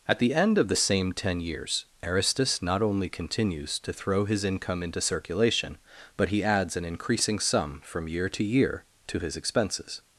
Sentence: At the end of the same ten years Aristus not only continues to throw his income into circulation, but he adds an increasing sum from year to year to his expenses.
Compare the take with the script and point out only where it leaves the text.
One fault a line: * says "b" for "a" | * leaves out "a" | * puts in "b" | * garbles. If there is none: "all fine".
all fine